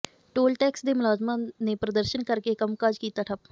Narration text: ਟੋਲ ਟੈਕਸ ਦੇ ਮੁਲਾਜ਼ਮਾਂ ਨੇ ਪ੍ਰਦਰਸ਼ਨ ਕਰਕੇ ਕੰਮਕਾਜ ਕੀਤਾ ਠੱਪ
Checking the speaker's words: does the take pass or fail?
pass